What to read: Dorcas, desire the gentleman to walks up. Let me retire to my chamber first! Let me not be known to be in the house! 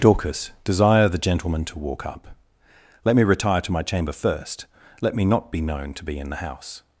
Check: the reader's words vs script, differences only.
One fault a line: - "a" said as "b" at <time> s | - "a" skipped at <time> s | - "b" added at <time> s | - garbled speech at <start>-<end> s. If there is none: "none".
- "walks" said as "walk" at 1.8 s